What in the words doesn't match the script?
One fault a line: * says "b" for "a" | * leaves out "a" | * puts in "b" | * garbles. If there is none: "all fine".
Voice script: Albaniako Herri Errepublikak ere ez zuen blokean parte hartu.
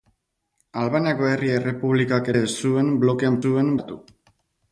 * leaves out "ere"
* says "zuen" for "parte"